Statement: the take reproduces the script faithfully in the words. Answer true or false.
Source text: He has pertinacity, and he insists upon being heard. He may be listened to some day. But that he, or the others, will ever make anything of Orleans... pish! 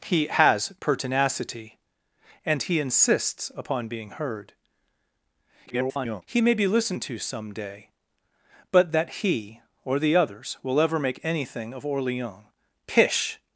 false